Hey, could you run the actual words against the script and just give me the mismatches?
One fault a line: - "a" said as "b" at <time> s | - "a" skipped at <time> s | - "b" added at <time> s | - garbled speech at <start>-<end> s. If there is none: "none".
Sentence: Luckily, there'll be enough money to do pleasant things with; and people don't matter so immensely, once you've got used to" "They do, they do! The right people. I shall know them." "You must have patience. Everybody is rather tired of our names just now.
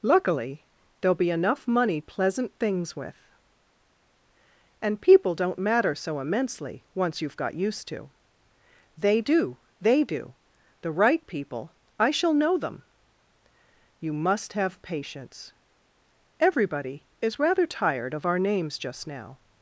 - "to do" skipped at 2.0 s